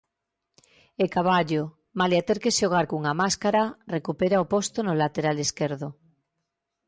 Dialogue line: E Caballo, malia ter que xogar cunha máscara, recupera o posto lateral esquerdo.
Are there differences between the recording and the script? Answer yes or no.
yes